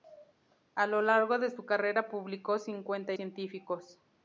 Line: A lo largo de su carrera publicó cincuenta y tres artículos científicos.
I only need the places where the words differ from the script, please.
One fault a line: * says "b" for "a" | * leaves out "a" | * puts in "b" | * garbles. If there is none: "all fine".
* leaves out "y tres artículos"